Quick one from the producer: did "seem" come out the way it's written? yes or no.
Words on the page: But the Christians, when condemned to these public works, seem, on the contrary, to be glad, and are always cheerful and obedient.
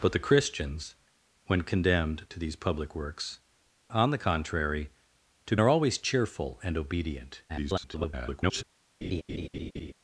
no